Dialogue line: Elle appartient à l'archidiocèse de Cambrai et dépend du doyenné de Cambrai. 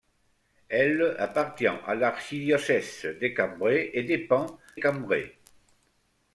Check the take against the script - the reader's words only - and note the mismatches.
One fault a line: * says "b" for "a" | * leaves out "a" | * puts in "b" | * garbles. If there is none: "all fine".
* leaves out "du doyenné de"